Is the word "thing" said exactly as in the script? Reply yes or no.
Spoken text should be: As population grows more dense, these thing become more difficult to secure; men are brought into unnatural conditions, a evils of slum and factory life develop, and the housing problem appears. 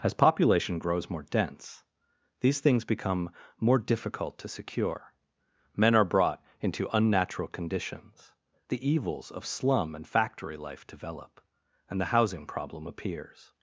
no